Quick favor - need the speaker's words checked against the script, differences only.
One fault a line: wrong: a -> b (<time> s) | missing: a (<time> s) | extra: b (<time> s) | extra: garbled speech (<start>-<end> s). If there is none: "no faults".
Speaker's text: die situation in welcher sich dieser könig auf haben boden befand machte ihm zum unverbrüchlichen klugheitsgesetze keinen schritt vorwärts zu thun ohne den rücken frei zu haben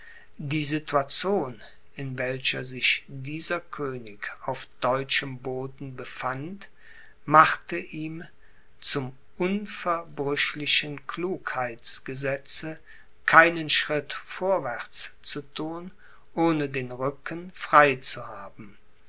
wrong: haben -> deutschem (4.8 s)